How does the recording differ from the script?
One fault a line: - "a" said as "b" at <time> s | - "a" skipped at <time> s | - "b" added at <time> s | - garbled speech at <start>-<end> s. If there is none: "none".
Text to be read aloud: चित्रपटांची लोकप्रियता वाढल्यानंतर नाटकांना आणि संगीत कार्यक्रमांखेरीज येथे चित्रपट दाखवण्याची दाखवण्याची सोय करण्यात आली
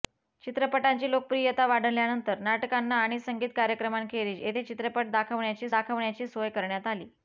none